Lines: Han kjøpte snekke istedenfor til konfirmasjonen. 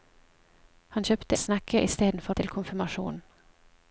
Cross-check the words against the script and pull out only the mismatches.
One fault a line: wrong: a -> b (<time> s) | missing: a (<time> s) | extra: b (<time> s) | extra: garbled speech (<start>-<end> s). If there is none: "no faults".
no faults